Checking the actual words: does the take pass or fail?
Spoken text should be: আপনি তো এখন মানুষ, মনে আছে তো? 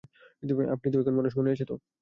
pass